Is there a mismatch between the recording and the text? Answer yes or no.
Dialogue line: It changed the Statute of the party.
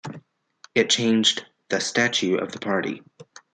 no